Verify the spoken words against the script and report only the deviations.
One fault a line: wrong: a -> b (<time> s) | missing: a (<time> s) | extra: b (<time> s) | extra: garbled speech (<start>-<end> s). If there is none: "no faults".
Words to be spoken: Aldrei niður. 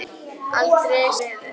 no faults